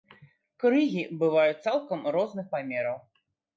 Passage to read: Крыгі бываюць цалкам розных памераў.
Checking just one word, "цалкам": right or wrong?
right